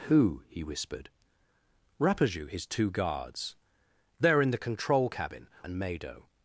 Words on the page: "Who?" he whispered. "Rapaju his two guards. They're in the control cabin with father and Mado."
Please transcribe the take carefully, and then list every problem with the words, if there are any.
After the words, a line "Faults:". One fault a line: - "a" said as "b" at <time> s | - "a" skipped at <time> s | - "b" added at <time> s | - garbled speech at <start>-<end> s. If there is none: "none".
"Who?" he whispered. "Rapaju his two guards. They're in the control cabin and Mado."
Faults:
- "with father" skipped at 5.5 s